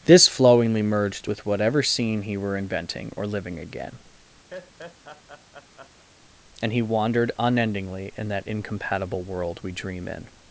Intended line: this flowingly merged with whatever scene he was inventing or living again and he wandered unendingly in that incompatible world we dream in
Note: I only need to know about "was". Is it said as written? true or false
false